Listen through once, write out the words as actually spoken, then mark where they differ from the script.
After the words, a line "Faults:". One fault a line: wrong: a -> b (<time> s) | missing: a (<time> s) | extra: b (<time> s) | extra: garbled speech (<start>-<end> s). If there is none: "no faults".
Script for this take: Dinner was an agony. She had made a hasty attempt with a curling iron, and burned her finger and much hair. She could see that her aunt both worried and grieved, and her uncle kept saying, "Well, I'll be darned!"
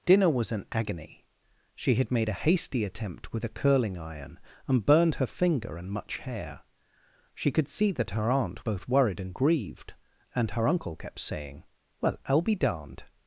Dinner was an agony. She had made a hasty attempt with a curling iron, and burned her finger and much hair. She could see that her aunt both worried and grieved, and her uncle kept saying, "Well, I'll be darned!"
Faults:
no faults